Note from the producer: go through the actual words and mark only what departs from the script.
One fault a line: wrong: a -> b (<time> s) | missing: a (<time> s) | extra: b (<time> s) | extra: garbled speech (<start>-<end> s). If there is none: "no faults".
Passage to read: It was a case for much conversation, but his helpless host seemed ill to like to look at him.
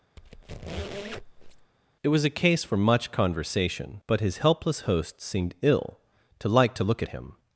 no faults